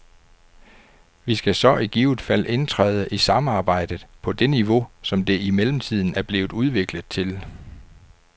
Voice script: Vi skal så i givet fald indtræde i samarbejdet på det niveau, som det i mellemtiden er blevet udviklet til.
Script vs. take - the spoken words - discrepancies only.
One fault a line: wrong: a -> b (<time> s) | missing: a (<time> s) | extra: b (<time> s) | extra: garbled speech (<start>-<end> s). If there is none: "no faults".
no faults